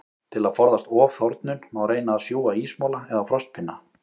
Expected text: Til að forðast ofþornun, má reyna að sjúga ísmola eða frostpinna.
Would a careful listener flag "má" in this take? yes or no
no